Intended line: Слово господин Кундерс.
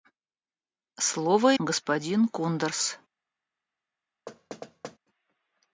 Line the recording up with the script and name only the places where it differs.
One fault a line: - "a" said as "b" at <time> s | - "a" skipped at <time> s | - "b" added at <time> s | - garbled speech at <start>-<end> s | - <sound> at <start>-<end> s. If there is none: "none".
- thud at 4.3-5.0 s